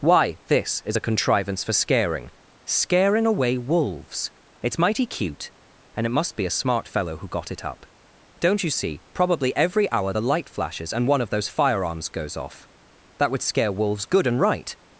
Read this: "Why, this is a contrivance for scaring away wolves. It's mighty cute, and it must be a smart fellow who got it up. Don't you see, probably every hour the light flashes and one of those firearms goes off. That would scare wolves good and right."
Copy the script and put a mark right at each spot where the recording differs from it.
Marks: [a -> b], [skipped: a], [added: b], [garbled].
"Why, this is a contrivance for scaring [added: scaring] away wolves. It's mighty cute, and it must be a smart fellow who got it up. Don't you see, probably every hour the light flashes and one of those firearms goes off. That would scare wolves good and right."